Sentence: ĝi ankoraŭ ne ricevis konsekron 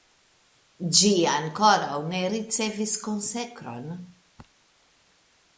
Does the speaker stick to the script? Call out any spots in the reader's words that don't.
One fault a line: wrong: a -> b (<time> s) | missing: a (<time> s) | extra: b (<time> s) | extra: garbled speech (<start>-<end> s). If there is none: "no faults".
no faults